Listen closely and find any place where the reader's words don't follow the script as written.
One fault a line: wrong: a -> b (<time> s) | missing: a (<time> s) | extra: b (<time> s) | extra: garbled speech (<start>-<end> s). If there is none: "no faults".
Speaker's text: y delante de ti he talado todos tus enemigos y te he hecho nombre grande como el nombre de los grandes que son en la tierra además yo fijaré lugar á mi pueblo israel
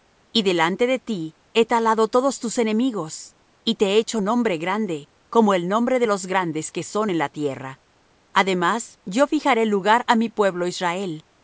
no faults